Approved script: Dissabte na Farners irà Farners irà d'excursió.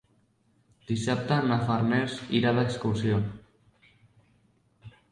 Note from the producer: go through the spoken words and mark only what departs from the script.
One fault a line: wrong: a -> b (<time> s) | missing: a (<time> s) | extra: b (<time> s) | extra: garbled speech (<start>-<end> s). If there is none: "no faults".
missing: Farners irà (2.6 s)